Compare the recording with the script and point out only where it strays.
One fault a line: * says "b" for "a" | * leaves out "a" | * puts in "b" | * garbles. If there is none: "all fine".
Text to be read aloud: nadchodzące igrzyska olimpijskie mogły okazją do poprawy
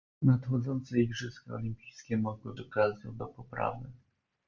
all fine